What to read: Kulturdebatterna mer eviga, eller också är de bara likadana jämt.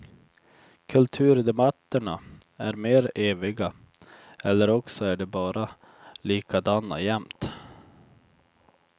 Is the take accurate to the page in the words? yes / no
no